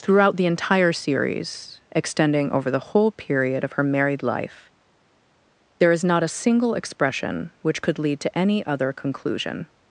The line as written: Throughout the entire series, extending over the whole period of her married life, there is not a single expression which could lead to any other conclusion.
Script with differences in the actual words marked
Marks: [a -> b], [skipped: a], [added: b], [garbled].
Throughout the entire series, extending over the whole period of her married life, there is not a single expression which could lead to any other conclusion.